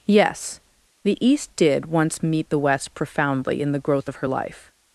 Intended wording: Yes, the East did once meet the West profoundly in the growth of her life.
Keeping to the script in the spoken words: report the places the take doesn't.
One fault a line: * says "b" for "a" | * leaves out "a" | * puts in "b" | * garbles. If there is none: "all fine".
all fine